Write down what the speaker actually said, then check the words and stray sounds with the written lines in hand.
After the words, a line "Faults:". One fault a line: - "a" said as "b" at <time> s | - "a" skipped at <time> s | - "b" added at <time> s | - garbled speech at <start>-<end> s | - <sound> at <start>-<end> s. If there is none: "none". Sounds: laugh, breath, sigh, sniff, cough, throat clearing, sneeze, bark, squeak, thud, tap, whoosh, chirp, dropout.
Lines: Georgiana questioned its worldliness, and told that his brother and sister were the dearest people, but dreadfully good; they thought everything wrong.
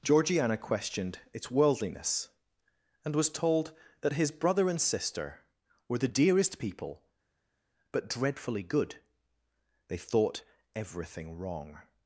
Georgiana questioned its worldliness, and was told that his brother and sister were the dearest people, but dreadfully good; they thought everything wrong.
Faults:
- "was" added at 3.1 s